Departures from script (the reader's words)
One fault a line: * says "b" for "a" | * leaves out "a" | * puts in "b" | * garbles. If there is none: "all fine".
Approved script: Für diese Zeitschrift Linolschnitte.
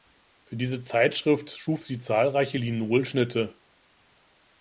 * puts in "schuf sie zahlreiche"